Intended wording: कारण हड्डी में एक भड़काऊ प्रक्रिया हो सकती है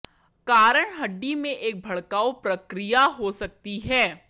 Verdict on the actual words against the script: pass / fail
pass